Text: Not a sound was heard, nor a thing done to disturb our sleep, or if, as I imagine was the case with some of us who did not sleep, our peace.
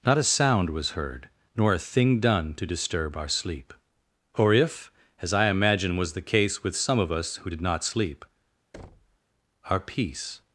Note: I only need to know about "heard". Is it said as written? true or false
true